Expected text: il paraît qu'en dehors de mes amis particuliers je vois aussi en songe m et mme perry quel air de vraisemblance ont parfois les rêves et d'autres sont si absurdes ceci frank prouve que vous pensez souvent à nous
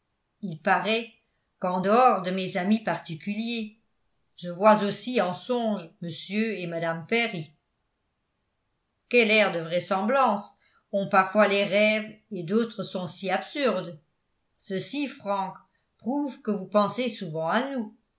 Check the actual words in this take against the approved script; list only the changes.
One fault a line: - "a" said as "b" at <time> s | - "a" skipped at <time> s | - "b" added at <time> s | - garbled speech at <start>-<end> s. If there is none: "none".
none